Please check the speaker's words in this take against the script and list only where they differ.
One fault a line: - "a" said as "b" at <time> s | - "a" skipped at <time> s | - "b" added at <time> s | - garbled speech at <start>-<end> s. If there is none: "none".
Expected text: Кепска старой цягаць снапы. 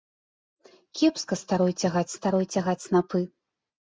- "старой цягаць" added at 2.2 s